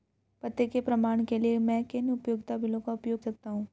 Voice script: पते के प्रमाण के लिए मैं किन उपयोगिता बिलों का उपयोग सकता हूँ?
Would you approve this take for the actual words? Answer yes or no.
yes